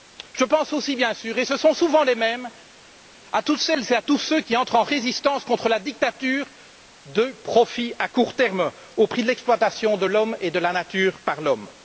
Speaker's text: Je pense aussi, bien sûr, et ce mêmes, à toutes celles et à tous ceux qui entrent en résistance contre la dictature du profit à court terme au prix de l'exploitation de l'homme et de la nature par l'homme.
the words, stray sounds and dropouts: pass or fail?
fail